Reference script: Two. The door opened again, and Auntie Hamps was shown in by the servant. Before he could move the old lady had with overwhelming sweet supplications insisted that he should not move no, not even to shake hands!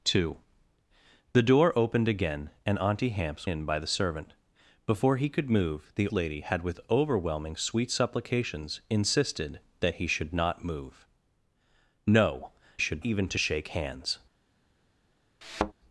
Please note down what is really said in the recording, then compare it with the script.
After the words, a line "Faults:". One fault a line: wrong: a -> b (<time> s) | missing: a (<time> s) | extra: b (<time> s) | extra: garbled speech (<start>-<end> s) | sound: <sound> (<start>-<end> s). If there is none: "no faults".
Two. The door opened again, and Auntie Hamps in by the servant. Before he could move the lady had with overwhelming sweet supplications insisted that he should not move no, should even to shake hands!
Faults:
missing: was shown (3.5 s)
missing: old (6.1 s)
wrong: not -> should (12.8 s)
sound: thud (15.4-15.7 s)